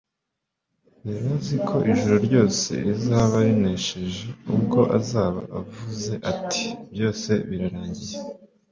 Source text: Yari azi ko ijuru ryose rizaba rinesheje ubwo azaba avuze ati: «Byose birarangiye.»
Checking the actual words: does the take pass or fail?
pass